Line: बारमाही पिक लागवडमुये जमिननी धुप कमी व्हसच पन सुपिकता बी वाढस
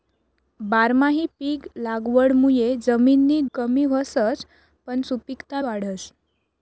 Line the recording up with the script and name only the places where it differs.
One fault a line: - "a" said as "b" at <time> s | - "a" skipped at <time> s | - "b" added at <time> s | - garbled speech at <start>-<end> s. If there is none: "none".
- "धुप" skipped at 3.4 s
- "बी" skipped at 5.6 s